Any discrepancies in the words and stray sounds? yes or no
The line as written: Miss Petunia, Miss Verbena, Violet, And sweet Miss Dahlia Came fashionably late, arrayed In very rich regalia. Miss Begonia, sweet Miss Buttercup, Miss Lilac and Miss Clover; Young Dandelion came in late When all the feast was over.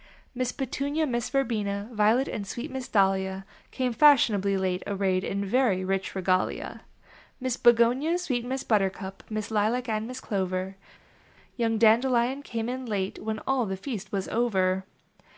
no